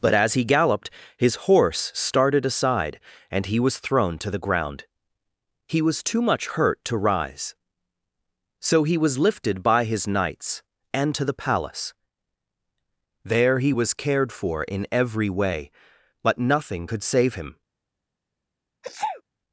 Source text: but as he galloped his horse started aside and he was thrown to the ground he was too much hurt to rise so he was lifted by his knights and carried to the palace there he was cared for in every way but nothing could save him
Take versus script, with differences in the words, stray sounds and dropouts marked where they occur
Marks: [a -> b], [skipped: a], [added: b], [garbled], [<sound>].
but as he galloped his horse started aside and he was thrown to the ground he was too much hurt to rise so he was lifted by his knights and [skipped: carried] to the palace there he was cared for in every way but nothing could save him [sneeze]